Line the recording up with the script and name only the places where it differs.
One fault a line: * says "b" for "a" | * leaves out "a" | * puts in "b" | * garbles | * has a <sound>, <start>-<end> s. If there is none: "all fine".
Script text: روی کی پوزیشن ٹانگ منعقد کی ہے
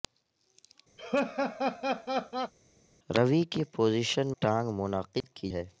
* has a laugh, 1.0-2.5 s
* has a dropout, 5.2-5.2 s